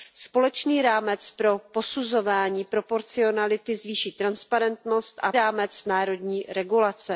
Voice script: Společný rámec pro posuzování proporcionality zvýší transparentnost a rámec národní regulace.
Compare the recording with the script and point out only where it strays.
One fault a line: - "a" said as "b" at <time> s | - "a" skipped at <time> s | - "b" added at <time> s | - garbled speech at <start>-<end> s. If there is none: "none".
none